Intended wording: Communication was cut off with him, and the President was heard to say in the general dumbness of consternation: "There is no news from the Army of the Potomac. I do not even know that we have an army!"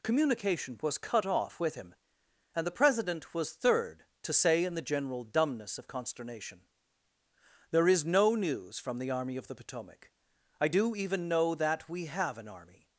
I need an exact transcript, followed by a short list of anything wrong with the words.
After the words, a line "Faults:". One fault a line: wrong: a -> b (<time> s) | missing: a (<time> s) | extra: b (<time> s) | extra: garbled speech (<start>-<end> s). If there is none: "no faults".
Communication was cut off with him, and the President was third to say in the general dumbness of consternation: "There is no news from the Army of the Potomac. I do even know that we have an army!"
Faults:
wrong: heard -> third (3.5 s)
missing: not (11.0 s)